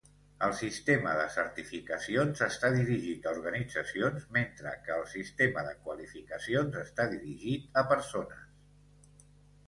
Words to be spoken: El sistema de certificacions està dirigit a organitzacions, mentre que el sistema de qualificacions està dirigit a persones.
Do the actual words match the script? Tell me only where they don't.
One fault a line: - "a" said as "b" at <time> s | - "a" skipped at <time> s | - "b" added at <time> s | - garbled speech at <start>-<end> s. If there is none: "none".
none